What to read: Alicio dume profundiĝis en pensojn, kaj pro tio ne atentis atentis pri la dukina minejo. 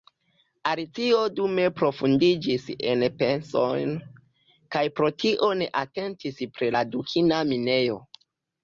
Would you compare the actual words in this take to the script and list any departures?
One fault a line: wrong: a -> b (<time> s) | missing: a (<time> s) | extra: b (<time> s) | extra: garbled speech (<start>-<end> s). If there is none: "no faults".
missing: atentis (6.4 s)